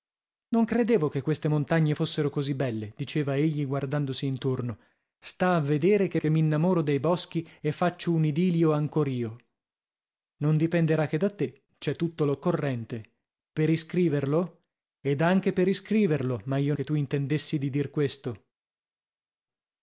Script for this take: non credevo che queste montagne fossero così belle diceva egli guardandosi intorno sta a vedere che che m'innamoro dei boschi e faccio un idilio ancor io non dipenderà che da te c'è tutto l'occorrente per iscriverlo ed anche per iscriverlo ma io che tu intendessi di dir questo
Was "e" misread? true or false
false